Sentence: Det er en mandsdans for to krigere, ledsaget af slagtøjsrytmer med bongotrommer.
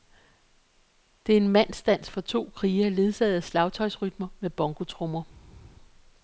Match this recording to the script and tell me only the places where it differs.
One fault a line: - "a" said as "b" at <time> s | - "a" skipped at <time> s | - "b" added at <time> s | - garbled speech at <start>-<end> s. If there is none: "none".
none